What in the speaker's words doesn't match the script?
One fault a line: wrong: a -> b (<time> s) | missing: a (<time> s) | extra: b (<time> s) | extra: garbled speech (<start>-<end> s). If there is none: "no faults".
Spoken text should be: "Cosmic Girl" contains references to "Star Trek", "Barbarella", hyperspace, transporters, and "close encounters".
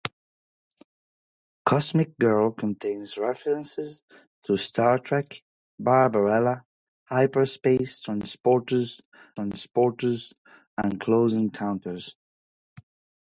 extra: transporters (9.3 s)